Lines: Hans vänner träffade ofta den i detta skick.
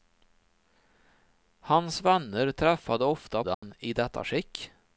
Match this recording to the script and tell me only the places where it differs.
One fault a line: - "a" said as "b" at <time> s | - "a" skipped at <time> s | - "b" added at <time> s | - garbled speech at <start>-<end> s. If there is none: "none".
none